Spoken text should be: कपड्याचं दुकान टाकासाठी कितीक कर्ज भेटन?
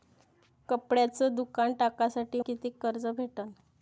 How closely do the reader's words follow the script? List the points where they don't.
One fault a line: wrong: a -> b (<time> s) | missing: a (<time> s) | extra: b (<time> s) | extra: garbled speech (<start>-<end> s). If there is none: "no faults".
no faults